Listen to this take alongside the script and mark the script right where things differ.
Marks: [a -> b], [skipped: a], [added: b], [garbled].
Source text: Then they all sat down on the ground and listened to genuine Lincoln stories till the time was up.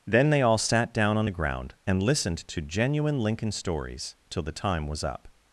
Then they all sat down on the ground and listened to genuine Lincoln stories till the time was up.